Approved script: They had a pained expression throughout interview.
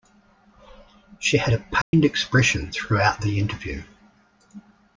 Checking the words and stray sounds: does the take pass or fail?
fail